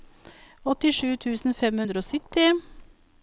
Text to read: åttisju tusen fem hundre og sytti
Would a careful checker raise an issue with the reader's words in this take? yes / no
no